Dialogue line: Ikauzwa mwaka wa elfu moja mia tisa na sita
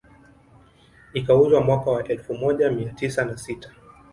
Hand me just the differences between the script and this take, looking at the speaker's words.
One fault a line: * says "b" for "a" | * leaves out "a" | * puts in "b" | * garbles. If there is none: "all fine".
all fine